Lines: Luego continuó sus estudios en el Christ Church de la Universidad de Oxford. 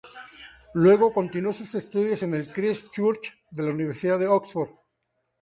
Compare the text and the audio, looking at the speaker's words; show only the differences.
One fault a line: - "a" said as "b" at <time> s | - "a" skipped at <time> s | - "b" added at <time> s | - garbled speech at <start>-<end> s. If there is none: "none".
none